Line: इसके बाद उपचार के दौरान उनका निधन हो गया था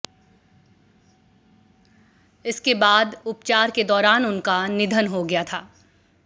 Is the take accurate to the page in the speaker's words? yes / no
yes